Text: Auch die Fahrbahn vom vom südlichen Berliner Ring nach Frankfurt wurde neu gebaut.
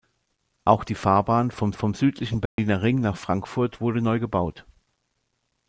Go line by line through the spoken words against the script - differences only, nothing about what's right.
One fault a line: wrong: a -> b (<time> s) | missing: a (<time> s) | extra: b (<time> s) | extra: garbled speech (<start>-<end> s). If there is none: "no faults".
no faults